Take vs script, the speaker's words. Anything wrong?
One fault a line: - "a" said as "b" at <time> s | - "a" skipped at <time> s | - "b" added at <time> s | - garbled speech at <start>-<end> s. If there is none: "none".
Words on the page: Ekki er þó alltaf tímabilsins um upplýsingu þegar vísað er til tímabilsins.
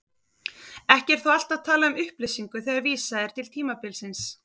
- "tímabilsins" said as "talað" at 1.7 s